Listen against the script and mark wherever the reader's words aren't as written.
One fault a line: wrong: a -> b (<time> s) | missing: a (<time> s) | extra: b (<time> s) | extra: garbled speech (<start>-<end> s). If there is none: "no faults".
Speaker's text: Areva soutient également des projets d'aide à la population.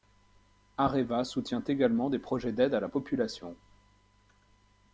no faults